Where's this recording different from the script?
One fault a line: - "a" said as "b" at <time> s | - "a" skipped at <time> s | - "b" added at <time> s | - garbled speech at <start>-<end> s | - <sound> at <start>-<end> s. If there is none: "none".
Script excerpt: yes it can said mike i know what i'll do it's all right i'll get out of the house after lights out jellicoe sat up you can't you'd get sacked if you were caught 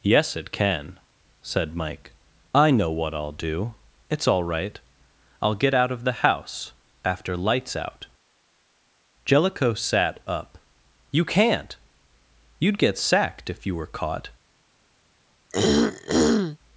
- throat clearing at 15.5-16.6 s